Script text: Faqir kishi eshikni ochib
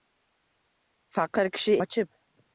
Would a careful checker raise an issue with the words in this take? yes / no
yes